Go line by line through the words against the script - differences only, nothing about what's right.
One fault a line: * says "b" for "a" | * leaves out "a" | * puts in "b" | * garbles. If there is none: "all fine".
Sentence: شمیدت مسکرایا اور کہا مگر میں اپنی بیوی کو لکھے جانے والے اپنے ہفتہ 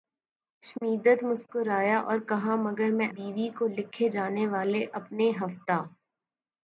* leaves out "اپنی"